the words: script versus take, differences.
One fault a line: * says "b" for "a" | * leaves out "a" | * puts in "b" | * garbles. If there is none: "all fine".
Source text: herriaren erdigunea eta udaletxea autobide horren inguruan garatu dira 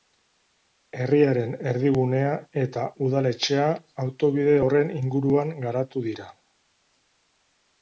all fine